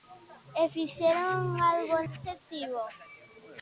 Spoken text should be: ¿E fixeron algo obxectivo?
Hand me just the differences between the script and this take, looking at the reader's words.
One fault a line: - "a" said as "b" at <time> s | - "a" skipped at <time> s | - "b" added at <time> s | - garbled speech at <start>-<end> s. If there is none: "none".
none